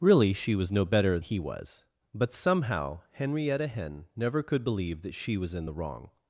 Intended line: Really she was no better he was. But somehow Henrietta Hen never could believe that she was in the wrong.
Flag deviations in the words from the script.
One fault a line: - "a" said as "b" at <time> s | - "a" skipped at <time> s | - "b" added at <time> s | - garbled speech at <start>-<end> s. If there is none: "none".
none